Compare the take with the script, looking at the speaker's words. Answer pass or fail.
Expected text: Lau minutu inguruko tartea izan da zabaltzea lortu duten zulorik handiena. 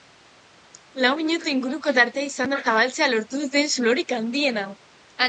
pass